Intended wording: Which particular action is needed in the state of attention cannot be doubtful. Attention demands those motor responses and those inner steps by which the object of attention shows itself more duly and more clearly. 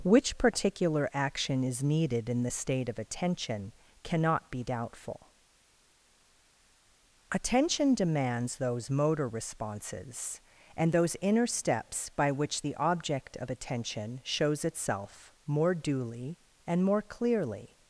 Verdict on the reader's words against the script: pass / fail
pass